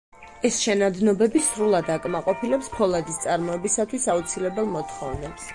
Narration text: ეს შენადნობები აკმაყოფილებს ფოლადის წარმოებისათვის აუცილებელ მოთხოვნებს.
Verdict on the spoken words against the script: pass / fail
fail